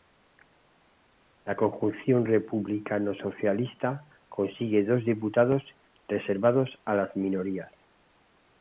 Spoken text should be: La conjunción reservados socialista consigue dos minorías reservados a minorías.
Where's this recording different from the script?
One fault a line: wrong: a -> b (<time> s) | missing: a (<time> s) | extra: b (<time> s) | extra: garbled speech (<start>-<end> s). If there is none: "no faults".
wrong: reservados -> republicano (2.2 s)
wrong: minorías -> diputados (5.0 s)
extra: las (6.9 s)